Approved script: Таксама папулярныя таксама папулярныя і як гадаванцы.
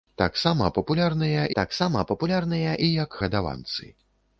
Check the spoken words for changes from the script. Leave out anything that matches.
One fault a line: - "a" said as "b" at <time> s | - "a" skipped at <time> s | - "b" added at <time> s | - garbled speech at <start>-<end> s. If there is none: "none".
none